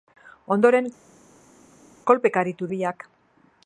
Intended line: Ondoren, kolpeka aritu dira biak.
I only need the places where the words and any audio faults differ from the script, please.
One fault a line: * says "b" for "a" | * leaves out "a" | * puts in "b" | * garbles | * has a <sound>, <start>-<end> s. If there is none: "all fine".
* leaves out "dira"